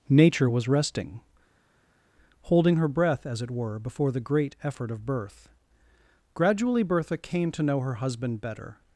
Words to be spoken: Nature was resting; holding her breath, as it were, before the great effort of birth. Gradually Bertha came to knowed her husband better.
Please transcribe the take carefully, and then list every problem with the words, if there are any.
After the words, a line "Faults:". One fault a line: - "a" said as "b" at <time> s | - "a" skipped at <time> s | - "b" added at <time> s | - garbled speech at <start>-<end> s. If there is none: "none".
Nature was resting; holding her breath, as it were, before the great effort of birth. Gradually Bertha came to know her husband better.
Faults:
- "knowed" said as "know" at 7.6 s